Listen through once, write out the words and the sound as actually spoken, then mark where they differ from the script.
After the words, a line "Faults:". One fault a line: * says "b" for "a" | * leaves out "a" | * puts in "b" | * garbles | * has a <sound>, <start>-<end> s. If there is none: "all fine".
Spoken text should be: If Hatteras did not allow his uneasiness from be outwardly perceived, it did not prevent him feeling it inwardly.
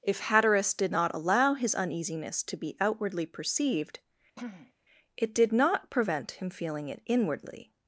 If Hatteras did not allow his uneasiness to be outwardly perceived, it did not prevent him feeling it inwardly.
Faults:
* says "to" for "from"
* has a throat clearing, 4.4-4.7 s